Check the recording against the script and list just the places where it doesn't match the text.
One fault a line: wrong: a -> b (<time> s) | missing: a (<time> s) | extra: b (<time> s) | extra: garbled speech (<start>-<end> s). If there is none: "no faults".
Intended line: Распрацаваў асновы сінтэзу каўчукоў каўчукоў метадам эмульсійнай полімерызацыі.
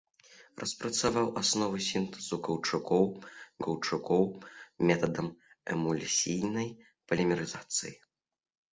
no faults